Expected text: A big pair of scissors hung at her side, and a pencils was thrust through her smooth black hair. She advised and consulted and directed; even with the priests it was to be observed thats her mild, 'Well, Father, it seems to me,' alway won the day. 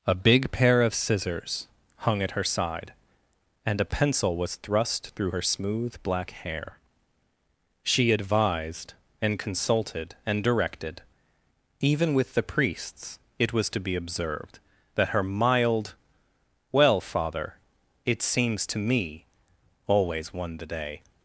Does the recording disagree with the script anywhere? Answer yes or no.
yes